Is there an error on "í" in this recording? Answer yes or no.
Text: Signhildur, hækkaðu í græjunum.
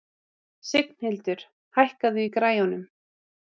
no